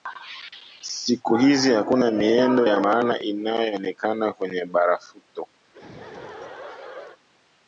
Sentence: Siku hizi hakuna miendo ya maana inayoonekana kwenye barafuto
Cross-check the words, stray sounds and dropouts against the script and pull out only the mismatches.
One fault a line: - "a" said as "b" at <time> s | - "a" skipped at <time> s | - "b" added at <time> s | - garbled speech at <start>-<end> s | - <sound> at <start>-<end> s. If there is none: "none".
- laugh at 5.6-7.2 s